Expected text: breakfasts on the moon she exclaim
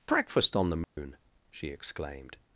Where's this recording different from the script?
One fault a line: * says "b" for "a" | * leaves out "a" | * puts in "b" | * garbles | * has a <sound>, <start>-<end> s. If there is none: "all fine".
* says "breakfast" for "breakfasts"
* has a dropout, 0.8-1.0 s
* says "exclaimed" for "exclaim"